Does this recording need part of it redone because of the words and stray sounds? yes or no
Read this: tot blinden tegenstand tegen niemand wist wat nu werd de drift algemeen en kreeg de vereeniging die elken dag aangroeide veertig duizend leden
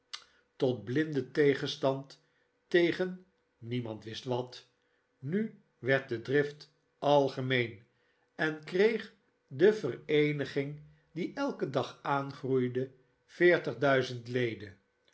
no